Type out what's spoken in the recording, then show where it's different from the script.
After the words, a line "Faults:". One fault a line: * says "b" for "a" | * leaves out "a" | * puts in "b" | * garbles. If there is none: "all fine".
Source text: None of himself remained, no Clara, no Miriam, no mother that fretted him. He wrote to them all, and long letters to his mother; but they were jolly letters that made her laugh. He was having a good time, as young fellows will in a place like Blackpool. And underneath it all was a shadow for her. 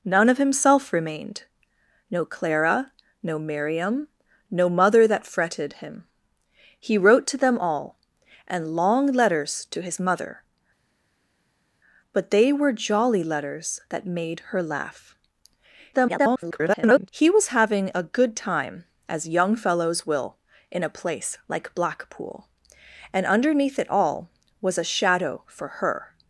None of himself remained, no Clara, no Miriam, no mother that fretted him. He wrote to them all, and long letters to his mother; but they were jolly letters that made her laugh. [garbled] He was having a good time, as young fellows will in a place like Blackpool. And underneath it all was a shadow for her.
Faults:
* garbles